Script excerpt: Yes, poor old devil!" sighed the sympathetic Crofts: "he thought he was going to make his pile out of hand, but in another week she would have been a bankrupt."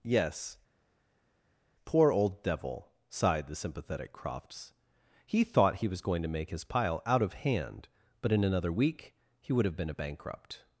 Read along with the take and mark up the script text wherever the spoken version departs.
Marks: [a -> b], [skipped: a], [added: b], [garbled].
Yes, poor old devil!" sighed the sympathetic Crofts: "he thought he was going to make his pile out of hand, but in another week [she -> he] would have been a bankrupt."